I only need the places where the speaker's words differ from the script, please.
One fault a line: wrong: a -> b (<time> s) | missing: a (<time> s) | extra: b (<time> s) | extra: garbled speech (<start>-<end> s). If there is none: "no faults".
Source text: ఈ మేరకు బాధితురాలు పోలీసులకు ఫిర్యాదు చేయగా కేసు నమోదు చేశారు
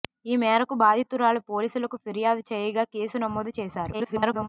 extra: garbled speech (3.9-4.5 s)